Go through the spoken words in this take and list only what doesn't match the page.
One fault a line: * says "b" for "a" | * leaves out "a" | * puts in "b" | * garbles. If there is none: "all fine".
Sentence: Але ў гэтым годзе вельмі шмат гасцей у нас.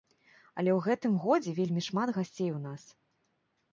all fine